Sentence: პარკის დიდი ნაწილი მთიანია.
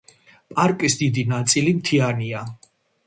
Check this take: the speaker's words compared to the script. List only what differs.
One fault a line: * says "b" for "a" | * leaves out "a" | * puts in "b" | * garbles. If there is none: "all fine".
all fine